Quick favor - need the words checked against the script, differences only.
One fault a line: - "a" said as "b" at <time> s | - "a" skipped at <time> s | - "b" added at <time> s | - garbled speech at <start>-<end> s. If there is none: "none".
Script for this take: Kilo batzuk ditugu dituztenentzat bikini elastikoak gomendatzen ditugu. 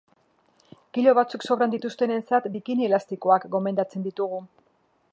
- "ditugu" said as "sobran" at 1.5 s